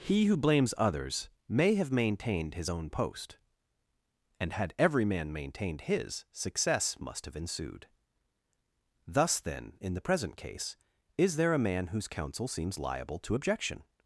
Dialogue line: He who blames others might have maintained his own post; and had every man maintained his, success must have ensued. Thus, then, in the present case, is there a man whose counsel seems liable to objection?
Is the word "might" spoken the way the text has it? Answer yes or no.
no